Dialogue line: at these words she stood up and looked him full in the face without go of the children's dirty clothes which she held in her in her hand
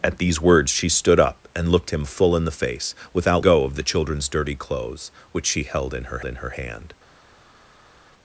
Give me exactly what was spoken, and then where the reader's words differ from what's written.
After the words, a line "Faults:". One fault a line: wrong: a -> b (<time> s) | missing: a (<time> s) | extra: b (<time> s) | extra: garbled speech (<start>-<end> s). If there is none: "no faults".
at these words she stood up and looked him full in the face without go of the children's dirty clothes which she held in her in her hand
Faults:
no faults